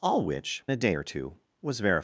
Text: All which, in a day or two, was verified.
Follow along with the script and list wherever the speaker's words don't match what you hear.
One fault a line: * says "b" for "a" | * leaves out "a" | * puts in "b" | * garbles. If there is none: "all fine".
* leaves out "in"